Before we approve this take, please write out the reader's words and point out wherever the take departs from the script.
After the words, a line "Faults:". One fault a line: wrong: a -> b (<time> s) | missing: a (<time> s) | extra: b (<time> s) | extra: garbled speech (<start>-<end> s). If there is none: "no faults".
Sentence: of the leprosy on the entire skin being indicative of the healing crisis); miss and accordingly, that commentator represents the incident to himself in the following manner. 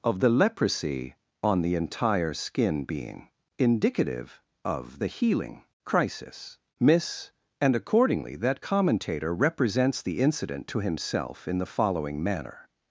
of the leprosy on the entire skin being indicative of the healing crisis); miss and accordingly, that commentator represents the incident to himself in the following manner.
Faults:
no faults